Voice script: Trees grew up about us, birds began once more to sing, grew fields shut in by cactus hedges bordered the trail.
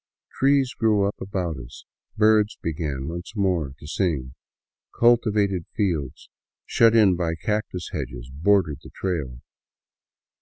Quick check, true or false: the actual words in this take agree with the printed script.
false